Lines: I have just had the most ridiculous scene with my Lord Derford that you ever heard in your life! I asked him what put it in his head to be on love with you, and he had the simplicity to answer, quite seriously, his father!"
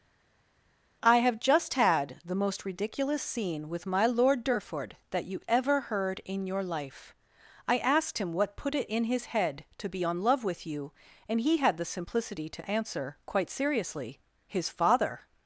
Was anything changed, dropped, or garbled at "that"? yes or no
no